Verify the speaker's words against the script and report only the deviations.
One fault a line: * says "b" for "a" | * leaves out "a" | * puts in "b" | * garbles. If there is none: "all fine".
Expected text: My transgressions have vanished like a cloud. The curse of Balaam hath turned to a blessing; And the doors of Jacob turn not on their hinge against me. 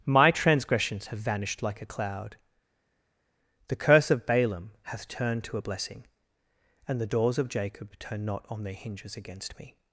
* says "hinges" for "hinge"